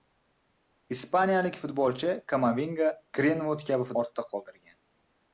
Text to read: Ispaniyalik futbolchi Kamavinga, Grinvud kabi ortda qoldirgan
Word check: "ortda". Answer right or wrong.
right